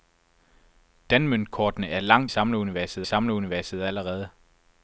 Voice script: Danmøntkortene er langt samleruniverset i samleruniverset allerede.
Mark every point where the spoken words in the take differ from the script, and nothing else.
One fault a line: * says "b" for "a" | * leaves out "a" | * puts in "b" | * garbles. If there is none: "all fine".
all fine